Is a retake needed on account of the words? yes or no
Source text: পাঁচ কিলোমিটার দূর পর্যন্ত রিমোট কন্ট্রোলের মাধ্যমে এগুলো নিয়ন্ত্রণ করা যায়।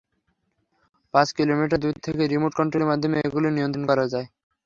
yes